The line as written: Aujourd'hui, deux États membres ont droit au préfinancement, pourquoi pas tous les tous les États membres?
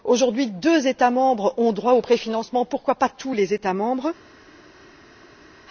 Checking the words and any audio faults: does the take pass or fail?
fail